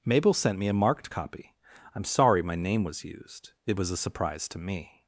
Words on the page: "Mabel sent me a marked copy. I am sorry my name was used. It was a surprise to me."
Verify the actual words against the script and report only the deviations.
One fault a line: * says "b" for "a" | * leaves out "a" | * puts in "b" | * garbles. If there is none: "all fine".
all fine